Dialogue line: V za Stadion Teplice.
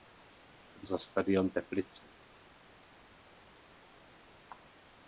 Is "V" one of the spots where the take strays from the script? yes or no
no